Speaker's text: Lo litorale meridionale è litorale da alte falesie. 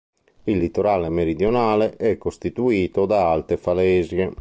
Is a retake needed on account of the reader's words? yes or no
yes